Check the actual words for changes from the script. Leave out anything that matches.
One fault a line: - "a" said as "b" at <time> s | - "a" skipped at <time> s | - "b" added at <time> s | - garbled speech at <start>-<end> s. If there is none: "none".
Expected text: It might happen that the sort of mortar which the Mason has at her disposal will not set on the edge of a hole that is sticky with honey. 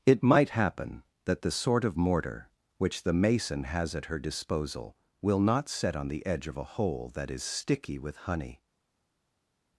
none